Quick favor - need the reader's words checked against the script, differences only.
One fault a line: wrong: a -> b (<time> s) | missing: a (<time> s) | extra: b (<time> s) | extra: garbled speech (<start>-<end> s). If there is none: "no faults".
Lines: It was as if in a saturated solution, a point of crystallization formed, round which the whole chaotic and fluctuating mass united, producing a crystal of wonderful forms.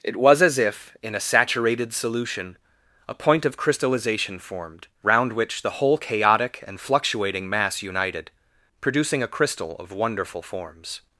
no faults